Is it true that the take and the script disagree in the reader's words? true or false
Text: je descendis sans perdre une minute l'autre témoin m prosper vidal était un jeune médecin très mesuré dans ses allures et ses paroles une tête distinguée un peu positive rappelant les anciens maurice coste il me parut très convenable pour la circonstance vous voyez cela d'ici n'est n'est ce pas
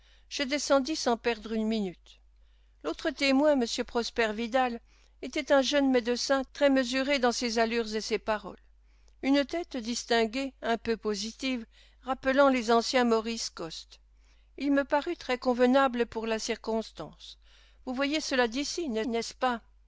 false